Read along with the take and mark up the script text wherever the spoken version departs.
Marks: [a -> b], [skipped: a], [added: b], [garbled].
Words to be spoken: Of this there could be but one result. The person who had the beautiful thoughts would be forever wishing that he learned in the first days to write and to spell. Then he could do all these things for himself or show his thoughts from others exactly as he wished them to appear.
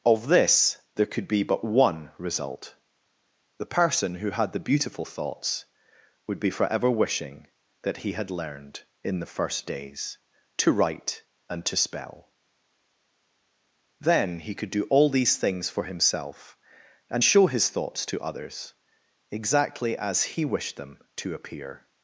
Of this there could be but one result. The person who had the beautiful thoughts would be forever wishing that he [added: had] learned in the first days to write and to spell. Then he could do all these things for himself [or -> and] show his thoughts [from -> to] others exactly as he wished them to appear.